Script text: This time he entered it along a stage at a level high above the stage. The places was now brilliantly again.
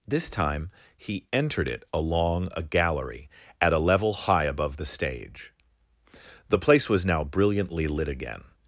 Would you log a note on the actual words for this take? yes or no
yes